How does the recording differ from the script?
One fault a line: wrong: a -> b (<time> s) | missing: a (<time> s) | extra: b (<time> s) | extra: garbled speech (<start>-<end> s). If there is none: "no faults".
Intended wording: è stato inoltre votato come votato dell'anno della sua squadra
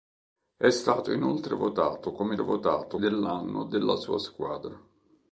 no faults